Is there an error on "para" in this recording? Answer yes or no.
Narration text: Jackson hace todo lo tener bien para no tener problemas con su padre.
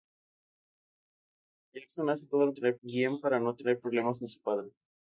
no